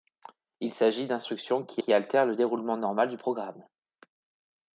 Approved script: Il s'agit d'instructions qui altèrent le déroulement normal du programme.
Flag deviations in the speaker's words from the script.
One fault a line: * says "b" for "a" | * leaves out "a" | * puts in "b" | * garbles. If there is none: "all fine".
* puts in "qui"